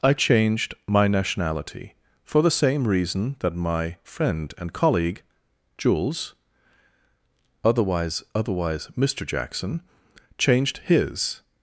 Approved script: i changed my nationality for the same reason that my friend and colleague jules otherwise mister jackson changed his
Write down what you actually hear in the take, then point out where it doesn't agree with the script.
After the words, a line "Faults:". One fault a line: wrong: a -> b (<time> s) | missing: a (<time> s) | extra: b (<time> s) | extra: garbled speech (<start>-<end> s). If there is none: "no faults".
i changed my nationality for the same reason that my friend and colleague jules otherwise otherwise mister jackson changed his
Faults:
extra: otherwise (8.3 s)